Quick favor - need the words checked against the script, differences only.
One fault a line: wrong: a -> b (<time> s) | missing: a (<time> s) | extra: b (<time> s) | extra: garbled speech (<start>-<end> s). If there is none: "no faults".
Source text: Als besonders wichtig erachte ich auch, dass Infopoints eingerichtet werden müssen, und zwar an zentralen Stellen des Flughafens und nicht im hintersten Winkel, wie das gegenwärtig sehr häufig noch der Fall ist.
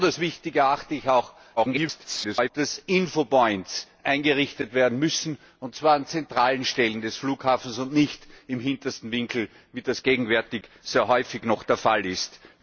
extra: garbled speech (1.6-2.5 s)